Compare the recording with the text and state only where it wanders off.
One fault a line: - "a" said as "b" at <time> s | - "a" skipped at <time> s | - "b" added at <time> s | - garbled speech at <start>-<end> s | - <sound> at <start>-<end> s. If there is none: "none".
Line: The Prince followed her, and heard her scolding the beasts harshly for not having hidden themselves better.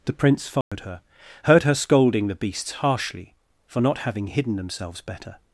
- dropout at 0.6-0.7 s
- "and" skipped at 1.0 s